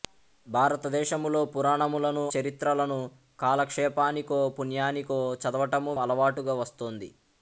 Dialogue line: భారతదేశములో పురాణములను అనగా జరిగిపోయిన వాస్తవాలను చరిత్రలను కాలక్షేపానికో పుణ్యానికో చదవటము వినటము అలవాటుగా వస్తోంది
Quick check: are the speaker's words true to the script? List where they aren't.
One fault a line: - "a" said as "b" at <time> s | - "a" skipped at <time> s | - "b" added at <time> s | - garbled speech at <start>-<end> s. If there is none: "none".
- "అనగా జరిగిపోయిన వాస్తవాలను" skipped at 2.2 s
- "వినటము" skipped at 5.9 s